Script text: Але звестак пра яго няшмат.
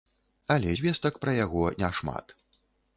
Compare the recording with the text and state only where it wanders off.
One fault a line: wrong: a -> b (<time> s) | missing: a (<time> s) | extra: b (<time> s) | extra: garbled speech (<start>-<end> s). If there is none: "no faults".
no faults